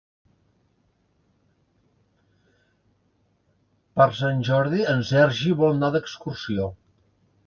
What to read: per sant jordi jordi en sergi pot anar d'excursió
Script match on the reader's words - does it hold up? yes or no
no